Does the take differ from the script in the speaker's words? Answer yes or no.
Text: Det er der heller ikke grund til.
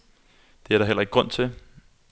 no